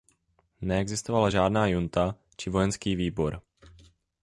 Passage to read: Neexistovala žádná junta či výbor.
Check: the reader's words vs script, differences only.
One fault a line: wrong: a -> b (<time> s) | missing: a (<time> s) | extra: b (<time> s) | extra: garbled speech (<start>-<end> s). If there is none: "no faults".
extra: vojenský (2.5 s)